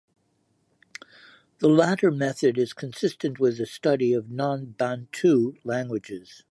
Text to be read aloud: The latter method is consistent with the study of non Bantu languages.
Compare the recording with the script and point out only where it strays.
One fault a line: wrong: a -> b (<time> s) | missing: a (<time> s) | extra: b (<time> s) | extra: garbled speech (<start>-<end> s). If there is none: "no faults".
no faults